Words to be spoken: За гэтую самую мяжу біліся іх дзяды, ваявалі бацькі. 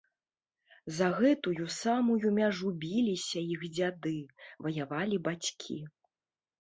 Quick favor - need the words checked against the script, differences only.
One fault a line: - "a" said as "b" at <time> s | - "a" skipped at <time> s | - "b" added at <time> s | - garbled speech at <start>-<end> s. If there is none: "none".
none